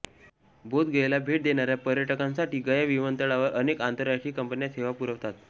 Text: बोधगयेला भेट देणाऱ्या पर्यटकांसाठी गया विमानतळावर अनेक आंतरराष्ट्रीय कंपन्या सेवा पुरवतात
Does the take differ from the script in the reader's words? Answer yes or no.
no